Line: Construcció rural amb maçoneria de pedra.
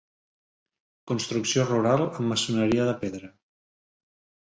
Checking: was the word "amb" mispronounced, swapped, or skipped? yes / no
no